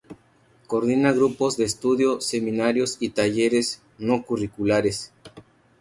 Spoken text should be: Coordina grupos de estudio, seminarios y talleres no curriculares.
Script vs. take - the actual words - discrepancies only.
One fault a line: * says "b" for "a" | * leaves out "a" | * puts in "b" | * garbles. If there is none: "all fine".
all fine